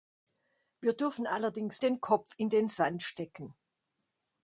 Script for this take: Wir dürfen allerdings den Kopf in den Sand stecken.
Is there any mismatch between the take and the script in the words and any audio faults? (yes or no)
no